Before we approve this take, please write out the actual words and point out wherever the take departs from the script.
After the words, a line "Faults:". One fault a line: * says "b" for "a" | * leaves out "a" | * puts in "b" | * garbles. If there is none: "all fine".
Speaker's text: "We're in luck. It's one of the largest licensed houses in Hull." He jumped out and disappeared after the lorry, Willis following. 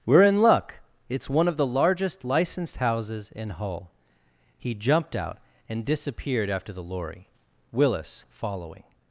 "We're in luck. It's one of the largest licensed houses in Hull." He jumped out and disappeared after the lorry, Willis following.
Faults:
all fine